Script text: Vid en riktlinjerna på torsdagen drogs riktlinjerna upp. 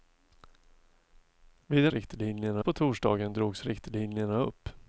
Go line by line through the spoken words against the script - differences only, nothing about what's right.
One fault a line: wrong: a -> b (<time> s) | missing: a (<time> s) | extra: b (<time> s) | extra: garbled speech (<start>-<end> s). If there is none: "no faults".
no faults